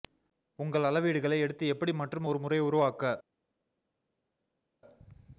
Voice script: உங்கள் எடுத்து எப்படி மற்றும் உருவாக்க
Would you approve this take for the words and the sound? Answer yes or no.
no